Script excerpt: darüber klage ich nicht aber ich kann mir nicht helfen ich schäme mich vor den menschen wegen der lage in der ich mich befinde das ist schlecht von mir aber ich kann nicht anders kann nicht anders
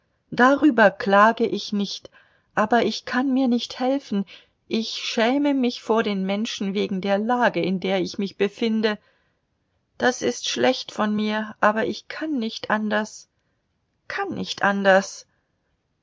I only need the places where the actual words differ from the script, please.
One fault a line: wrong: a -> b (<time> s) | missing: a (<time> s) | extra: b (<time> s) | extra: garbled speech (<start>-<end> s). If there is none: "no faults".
no faults